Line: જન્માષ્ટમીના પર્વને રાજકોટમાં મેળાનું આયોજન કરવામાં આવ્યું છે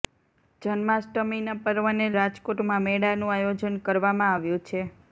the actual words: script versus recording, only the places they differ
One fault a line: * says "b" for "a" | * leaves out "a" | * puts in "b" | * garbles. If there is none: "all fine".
all fine